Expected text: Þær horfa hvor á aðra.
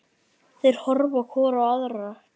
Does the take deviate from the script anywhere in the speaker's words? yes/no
no